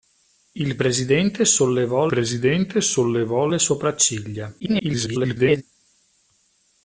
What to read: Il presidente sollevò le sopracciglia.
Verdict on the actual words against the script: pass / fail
fail